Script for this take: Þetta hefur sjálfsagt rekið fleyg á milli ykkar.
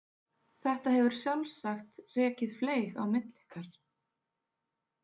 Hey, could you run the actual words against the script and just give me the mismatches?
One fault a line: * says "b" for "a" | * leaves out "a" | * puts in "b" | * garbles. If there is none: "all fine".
all fine